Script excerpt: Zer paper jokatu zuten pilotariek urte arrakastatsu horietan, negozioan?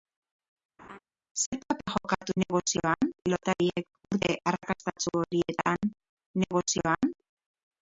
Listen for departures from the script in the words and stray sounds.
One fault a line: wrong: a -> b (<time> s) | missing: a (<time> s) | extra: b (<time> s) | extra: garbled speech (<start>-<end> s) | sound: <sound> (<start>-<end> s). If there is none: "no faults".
sound: laugh (0.8-1.0 s)
wrong: zuten -> negozioan (2.4 s)